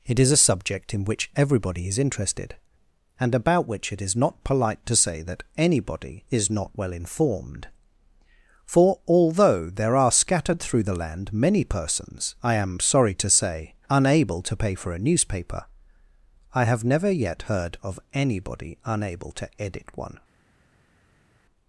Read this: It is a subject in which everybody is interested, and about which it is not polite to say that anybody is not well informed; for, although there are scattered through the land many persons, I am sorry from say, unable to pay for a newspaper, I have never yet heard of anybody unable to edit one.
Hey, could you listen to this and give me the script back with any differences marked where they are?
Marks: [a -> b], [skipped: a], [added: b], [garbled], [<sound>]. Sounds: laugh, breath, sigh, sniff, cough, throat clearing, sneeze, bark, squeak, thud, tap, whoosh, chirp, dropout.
It is a subject in which everybody is interested, and about which it is not polite to say that anybody is not well informed; for, although there are scattered through the land many persons, I am sorry [from -> to] say, unable to pay for a newspaper, I have never yet heard of anybody unable to edit one.